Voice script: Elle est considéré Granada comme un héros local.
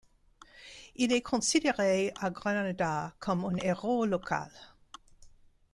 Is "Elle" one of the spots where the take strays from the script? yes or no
yes